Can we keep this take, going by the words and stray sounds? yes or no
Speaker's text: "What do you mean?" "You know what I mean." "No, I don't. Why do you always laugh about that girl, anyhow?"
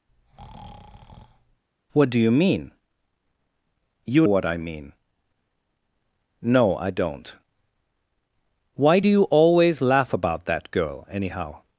no